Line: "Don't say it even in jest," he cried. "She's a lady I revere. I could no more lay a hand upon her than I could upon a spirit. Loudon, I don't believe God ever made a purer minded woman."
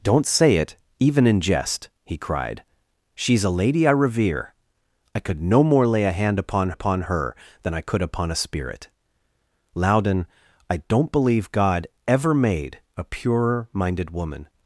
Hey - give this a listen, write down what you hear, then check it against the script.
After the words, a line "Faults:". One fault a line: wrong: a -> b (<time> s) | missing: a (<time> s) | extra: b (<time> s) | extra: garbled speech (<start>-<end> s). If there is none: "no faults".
"Don't say it even in jest," he cried. "She's a lady I revere. I could no more lay a hand upon upon her than I could upon a spirit. Loudon, I don't believe God ever made a purer minded woman."
Faults:
extra: upon (6.7 s)